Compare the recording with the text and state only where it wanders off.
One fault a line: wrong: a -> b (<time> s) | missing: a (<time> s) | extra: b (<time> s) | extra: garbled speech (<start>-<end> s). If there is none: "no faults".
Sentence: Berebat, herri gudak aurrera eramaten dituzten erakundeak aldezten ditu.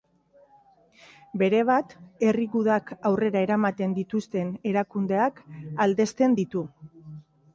no faults